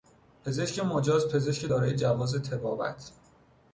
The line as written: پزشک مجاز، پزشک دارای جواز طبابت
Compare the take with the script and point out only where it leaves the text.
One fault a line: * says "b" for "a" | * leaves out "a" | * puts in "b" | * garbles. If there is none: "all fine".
all fine